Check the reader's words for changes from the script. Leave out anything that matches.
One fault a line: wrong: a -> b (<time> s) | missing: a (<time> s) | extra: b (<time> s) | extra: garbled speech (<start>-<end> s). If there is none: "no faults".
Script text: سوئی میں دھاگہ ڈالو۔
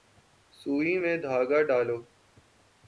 no faults